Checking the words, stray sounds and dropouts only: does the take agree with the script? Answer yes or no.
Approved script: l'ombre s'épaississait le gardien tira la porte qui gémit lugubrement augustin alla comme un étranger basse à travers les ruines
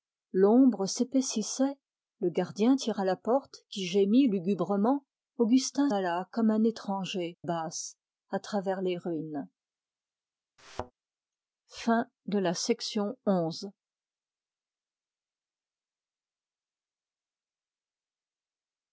no